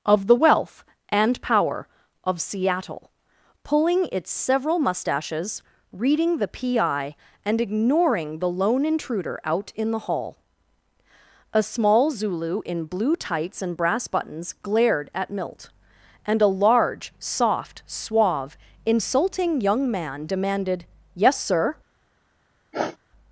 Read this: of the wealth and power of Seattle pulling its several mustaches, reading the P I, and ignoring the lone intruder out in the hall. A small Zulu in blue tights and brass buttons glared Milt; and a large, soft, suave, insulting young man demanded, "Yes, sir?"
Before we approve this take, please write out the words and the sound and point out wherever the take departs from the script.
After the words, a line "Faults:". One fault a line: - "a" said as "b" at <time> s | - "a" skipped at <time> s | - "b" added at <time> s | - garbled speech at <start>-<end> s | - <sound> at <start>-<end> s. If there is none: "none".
of the wealth and power of Seattle pulling its several mustaches, reading the P I, and ignoring the lone intruder out in the hall. A small Zulu in blue tights and brass buttons glared at Milt; and a large, soft, suave, insulting young man demanded, "Yes, sir?"
Faults:
- "at" added at 15.1 s
- sniff at 22.7-23.0 s